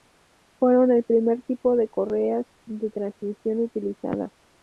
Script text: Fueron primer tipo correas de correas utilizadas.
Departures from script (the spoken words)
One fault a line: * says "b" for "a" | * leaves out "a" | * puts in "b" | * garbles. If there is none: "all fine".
* puts in "el"
* puts in "de"
* says "transmisión" for "correas"